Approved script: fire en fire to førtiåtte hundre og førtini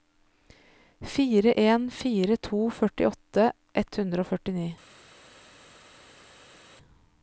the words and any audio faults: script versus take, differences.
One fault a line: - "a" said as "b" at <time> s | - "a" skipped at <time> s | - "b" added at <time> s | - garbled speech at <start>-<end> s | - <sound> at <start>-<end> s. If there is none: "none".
- "ett" added at 3.8 s